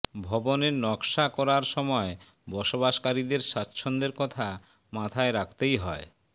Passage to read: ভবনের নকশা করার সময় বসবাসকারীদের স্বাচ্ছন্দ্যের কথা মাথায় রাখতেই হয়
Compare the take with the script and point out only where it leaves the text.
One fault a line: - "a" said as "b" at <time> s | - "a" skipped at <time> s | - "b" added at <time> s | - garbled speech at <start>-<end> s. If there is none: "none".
none